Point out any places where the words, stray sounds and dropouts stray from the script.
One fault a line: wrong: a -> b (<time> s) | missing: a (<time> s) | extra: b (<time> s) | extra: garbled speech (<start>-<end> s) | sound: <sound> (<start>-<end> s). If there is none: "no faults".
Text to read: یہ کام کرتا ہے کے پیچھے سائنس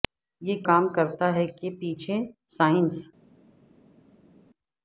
no faults